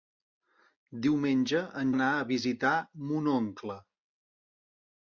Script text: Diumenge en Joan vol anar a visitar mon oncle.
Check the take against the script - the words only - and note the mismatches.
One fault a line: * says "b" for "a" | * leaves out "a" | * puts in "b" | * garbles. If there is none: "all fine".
* leaves out "Joan vol"